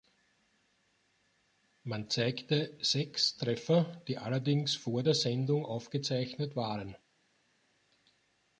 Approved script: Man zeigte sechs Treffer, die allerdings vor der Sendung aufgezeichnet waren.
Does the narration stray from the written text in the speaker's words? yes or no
no